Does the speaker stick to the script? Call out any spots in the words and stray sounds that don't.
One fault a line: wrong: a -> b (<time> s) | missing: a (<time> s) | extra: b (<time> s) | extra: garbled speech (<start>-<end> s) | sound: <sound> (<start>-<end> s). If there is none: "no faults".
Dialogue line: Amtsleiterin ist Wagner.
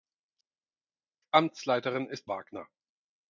no faults